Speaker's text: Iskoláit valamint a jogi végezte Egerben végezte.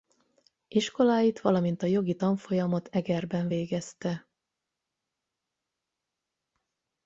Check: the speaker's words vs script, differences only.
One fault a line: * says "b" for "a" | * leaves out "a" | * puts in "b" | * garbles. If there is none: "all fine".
* says "tanfolyamot" for "végezte"